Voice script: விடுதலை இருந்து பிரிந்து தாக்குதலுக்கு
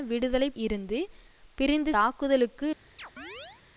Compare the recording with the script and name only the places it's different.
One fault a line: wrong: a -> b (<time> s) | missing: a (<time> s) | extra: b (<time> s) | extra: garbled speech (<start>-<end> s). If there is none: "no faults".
no faults